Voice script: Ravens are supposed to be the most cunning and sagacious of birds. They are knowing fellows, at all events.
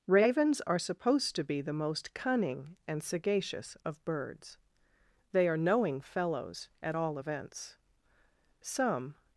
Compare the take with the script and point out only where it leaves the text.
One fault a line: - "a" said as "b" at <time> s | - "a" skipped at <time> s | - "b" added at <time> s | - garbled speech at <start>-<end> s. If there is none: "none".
- "Some" added at 8.6 s